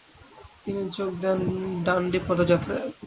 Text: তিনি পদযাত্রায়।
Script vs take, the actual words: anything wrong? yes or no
yes